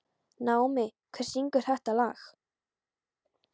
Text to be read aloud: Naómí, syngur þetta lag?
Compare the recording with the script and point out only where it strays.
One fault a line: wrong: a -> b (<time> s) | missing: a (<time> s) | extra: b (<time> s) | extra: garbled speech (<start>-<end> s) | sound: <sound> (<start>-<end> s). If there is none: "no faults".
extra: hver (1.2 s)